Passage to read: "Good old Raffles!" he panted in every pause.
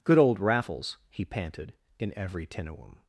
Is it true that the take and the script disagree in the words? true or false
true